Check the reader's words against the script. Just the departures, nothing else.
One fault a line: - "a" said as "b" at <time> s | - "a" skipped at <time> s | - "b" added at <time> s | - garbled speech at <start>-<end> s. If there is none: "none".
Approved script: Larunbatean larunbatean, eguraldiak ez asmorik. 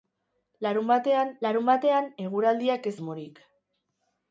none